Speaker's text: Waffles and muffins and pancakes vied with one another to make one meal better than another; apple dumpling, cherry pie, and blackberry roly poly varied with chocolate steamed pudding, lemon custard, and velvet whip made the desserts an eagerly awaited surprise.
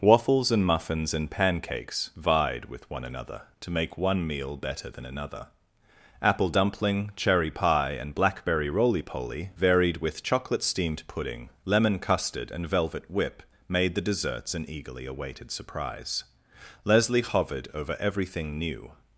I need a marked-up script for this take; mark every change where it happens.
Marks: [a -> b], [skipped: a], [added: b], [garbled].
Waffles and muffins and pancakes vied with one another to make one meal better than another; apple dumpling, cherry pie, and blackberry roly poly varied with chocolate steamed pudding, lemon custard, and velvet whip made the desserts an eagerly awaited surprise. [added: Leslie hovered over everything new]